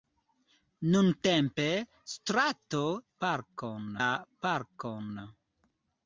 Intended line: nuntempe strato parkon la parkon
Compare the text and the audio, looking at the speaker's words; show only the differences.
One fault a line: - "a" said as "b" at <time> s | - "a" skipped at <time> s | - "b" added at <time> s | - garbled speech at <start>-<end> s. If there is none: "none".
none